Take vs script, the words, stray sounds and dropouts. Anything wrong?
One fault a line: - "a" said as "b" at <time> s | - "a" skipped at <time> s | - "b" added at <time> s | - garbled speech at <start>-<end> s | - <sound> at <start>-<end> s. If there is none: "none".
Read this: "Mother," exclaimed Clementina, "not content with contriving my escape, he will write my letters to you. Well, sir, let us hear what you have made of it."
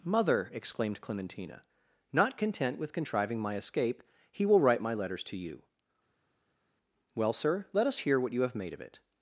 none